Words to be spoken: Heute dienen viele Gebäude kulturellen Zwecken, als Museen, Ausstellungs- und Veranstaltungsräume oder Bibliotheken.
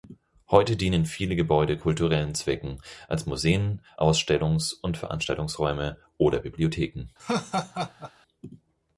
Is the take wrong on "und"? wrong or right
right